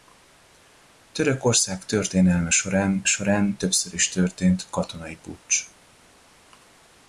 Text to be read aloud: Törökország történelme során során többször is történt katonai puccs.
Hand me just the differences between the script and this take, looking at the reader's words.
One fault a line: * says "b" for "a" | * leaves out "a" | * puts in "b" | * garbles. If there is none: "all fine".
all fine